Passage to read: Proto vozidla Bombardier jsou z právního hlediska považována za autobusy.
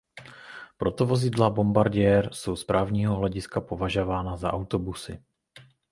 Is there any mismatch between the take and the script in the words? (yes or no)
no